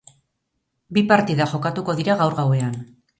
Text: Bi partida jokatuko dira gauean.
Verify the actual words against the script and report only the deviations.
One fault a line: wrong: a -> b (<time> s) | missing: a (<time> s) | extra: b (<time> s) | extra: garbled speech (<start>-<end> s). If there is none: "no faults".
extra: gaur (2.2 s)